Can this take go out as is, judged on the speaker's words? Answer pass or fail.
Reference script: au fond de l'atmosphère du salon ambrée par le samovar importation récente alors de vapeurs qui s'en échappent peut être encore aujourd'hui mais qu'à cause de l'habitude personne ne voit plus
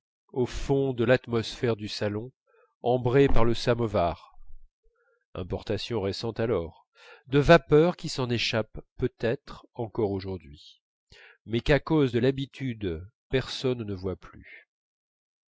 pass